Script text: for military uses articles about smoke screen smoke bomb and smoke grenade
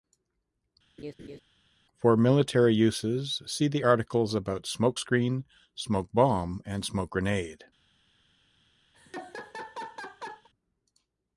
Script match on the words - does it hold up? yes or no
no